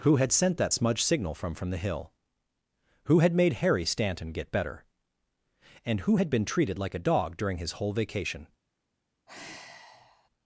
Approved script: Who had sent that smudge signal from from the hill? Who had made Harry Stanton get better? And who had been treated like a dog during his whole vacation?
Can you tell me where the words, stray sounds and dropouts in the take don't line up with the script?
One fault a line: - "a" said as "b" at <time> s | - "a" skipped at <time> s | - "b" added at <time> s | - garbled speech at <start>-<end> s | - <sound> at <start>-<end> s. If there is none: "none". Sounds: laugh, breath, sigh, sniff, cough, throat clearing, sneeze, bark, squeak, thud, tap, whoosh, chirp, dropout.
- sigh at 9.3-10.3 s